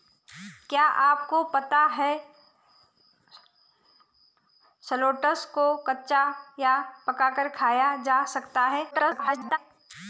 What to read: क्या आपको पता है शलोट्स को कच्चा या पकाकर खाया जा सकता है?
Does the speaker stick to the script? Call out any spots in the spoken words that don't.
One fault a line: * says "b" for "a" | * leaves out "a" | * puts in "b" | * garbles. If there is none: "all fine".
* garbles